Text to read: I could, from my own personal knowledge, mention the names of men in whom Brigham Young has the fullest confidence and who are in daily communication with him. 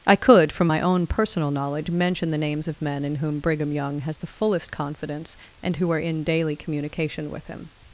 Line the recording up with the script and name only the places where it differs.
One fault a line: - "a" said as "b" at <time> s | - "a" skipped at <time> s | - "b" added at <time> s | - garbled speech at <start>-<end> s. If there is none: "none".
none